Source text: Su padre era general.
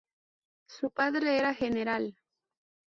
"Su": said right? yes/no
yes